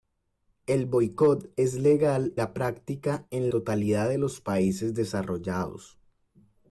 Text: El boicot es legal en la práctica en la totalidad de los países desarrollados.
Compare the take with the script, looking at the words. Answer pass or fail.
fail